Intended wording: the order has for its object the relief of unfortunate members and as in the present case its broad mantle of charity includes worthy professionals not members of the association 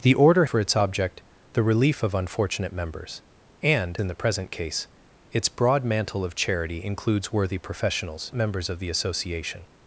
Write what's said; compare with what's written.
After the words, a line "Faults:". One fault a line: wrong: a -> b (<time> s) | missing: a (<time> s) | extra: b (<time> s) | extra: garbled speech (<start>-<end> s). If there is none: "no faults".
the order for its object the relief of unfortunate members and in the present case its broad mantle of charity includes worthy professionals members of the association
Faults:
missing: has (0.5 s)
missing: as (4.0 s)
missing: not (8.3 s)